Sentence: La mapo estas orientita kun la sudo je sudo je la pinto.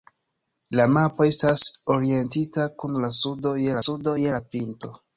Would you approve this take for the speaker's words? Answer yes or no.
yes